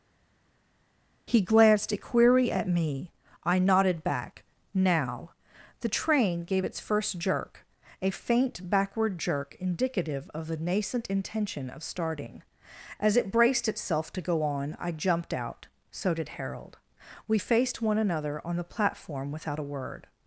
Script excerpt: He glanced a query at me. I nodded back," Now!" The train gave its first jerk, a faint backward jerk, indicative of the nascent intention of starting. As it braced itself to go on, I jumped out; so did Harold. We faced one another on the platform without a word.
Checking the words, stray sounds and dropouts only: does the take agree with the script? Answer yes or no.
yes